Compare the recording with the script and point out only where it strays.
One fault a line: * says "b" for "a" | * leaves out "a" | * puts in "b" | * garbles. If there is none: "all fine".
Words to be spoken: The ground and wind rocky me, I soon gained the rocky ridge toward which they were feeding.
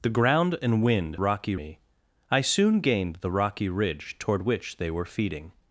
all fine